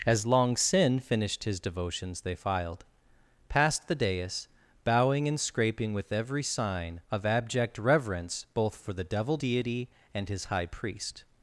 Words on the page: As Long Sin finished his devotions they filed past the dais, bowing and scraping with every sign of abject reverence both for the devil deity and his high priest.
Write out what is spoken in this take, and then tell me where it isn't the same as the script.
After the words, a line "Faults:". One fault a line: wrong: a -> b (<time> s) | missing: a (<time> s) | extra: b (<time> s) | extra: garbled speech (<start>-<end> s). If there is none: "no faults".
As Long Sin finished his devotions they filed past the dais, bowing and scraping with every sign of abject reverence both for the devil deity and his high priest.
Faults:
no faults